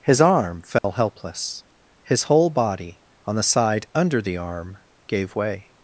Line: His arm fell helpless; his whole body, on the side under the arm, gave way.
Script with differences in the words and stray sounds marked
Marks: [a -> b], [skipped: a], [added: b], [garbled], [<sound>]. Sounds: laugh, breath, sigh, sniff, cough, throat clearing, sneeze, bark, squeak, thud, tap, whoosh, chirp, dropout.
His arm fell [dropout] helpless; his whole body, on the side under the arm, gave way.